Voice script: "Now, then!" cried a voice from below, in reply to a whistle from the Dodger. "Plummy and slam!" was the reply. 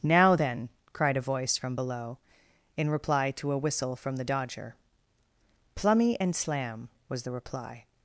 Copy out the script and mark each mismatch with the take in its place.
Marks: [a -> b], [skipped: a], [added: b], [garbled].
"Now, then!" cried a voice from below, in reply to a whistle from the Dodger. "Plummy and slam!" was the reply.